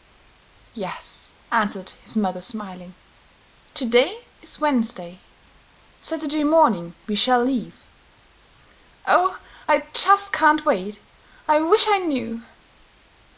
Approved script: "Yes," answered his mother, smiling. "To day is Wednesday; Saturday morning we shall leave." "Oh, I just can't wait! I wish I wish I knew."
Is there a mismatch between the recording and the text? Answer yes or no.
yes